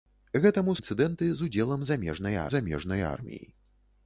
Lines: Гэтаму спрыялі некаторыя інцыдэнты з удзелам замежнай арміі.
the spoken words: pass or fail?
fail